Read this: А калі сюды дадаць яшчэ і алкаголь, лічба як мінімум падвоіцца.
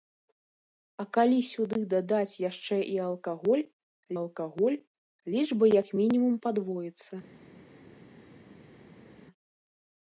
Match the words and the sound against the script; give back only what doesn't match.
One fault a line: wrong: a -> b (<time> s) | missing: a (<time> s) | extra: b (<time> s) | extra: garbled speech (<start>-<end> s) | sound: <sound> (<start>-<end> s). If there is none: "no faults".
extra: алкаголь (4.2 s)